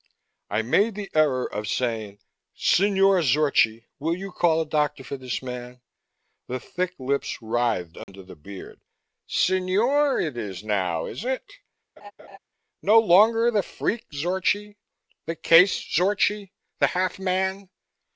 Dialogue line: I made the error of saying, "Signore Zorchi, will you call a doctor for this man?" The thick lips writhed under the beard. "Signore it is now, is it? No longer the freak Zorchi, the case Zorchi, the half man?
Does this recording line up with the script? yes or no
yes